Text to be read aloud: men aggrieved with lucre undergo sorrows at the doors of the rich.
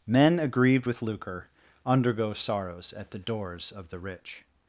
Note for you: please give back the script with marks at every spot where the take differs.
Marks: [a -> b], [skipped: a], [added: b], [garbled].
men aggrieved with lucre undergo sorrows at the doors of the rich.